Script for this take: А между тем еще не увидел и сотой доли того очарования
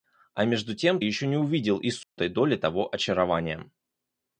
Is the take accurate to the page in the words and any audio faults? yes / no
no